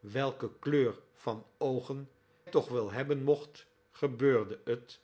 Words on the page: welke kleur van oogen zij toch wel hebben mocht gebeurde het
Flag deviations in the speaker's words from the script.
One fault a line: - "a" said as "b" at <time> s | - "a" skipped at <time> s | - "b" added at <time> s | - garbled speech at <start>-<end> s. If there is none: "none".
- "zij" skipped at 2.1 s